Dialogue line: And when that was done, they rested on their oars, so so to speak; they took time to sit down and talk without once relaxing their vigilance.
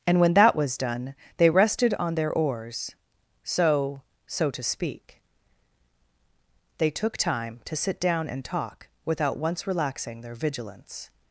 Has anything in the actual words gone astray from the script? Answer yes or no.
no